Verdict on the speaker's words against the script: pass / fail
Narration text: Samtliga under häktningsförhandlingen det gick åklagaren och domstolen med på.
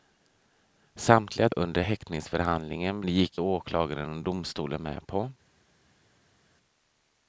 pass